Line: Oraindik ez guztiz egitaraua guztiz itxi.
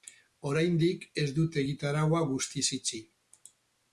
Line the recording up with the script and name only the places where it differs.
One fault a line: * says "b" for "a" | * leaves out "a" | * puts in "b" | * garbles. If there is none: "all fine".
* says "dute" for "guztiz"